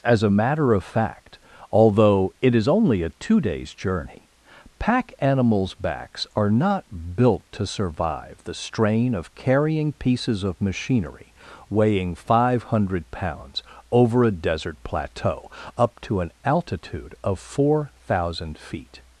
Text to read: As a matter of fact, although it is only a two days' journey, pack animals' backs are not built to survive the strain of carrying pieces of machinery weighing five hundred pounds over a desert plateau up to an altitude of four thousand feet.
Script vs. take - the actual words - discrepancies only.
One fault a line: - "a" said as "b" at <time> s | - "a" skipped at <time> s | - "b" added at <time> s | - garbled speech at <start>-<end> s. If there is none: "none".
none